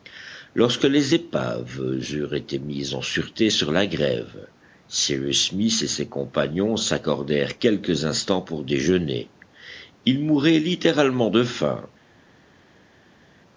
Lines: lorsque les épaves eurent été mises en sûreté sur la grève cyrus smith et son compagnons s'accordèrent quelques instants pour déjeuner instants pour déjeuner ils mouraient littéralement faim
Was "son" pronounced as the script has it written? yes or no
no